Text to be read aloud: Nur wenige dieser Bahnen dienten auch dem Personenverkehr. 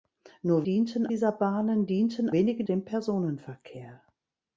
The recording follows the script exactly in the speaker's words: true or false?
false